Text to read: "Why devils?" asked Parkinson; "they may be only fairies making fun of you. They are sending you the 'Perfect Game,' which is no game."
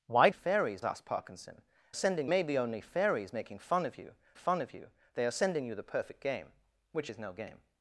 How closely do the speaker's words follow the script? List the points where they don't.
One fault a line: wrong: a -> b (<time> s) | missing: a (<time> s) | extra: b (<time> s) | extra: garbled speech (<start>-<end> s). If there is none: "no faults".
wrong: devils -> fairies (0.3 s)
wrong: they -> sending (1.9 s)
extra: fun of you (4.3 s)